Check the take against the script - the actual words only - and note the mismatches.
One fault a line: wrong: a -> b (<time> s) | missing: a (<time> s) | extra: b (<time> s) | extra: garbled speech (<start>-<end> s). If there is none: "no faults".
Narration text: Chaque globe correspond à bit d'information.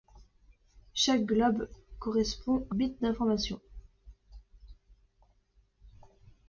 no faults